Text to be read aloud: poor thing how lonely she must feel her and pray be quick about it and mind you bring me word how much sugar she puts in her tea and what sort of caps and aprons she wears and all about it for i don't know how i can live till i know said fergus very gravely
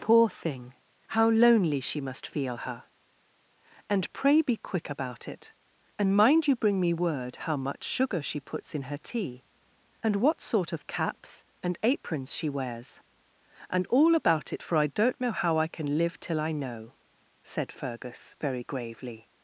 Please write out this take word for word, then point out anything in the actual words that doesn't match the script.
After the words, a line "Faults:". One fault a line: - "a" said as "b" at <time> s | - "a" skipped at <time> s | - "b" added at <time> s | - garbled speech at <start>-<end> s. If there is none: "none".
poor thing how lonely she must feel her and pray be quick about it and mind you bring me word how much sugar she puts in her tea and what sort of caps and aprons she wears and all about it for i don't know how i can live till i know said fergus very gravely
Faults:
none